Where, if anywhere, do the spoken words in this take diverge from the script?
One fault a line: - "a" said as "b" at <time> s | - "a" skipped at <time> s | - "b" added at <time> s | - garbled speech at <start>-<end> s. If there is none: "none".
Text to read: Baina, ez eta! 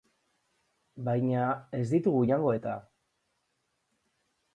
- "ditugu jango" added at 1.9 s